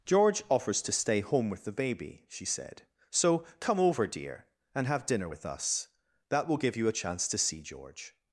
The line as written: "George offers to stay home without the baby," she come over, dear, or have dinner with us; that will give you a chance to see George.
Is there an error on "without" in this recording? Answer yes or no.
yes